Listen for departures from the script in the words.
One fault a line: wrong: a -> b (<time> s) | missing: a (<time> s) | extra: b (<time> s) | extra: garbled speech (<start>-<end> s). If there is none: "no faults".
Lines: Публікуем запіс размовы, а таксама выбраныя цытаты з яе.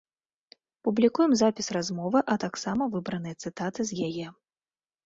no faults